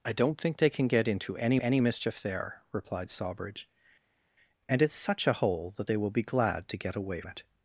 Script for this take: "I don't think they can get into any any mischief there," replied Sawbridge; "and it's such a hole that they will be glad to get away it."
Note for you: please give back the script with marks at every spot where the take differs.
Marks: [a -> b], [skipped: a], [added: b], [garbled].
"I don't think they can get into any any mischief there," replied Sawbridge; "and it's such a hole that they will be glad to get away it."